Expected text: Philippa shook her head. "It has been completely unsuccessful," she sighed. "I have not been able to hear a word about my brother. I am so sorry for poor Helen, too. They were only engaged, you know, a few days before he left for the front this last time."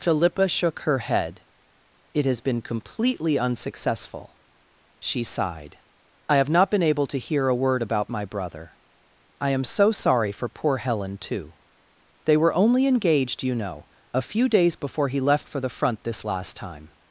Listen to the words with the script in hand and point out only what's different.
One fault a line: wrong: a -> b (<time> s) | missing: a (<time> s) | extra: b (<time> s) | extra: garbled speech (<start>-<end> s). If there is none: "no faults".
no faults